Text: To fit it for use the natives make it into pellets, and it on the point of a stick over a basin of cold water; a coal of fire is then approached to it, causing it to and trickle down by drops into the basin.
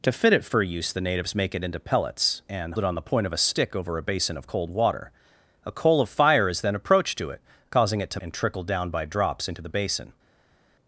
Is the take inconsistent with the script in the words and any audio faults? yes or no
no